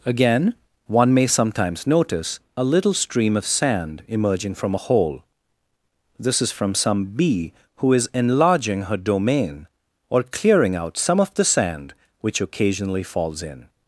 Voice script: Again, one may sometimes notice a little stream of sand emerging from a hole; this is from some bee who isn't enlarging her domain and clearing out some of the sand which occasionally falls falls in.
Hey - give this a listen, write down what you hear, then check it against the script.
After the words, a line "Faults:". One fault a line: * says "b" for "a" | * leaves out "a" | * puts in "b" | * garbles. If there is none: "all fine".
Again, one may sometimes notice a little stream of sand emerging from a hole; this is from some bee who is enlarging her domain or clearing out some of the sand which occasionally falls in.
Faults:
* says "is" for "isn't"
* says "or" for "and"
* leaves out "falls"